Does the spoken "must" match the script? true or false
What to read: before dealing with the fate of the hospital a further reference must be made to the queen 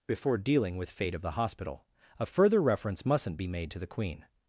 false